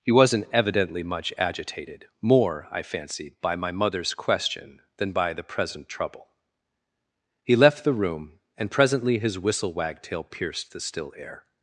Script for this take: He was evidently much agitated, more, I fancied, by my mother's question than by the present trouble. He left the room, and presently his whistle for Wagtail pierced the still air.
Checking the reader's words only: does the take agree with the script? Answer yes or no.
no